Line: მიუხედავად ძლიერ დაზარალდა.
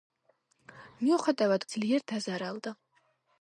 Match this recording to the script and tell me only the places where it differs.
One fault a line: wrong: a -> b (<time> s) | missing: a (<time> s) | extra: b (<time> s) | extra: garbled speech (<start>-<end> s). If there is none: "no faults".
no faults